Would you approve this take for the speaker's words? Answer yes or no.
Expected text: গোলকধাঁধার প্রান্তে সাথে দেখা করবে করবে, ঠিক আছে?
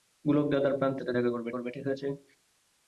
yes